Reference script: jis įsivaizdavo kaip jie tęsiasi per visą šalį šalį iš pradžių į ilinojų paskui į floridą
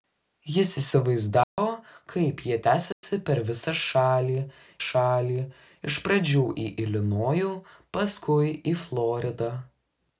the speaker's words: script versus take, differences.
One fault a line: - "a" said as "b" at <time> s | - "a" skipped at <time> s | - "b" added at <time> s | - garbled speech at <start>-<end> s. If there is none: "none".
none